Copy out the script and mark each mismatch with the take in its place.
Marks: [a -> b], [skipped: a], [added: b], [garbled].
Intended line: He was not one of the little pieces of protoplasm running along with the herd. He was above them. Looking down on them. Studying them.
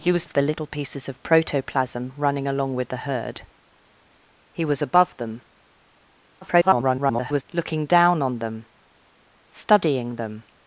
He was [skipped: not one] of the little pieces of protoplasm running along with the herd. He was above them. [garbled] Looking down on them. Studying them.